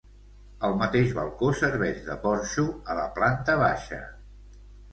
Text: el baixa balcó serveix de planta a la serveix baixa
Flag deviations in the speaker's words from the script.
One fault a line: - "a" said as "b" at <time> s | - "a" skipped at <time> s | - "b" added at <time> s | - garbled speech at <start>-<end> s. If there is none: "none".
- "baixa" said as "mateix" at 0.8 s
- "planta" said as "porxo" at 2.3 s
- "serveix" said as "planta" at 3.2 s